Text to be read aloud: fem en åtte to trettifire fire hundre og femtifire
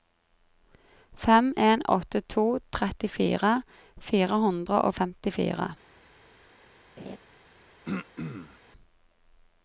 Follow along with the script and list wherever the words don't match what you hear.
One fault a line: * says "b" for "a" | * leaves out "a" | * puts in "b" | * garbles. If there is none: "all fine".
all fine